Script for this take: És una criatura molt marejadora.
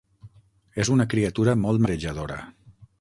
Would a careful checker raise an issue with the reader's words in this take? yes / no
no